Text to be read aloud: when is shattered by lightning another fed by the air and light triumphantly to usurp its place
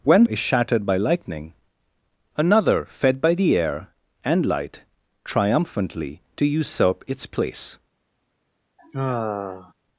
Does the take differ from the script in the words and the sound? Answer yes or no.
yes